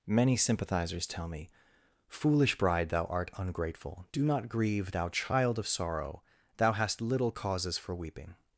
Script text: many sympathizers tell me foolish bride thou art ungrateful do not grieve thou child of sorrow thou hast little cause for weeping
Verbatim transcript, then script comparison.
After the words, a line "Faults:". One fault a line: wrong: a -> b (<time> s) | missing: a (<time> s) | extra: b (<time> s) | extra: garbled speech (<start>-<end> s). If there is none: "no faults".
many sympathizers tell me foolish bride thou art ungrateful do not grieve thou child of sorrow thou hast little causes for weeping
Faults:
wrong: cause -> causes (7.3 s)